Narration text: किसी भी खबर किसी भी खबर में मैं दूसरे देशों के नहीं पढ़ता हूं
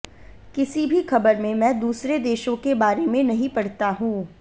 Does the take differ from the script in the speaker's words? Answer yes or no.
yes